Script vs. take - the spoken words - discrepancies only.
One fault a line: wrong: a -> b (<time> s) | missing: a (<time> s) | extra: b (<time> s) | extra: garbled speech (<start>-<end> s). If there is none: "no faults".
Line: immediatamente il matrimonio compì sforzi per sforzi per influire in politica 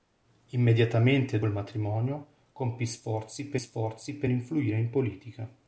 no faults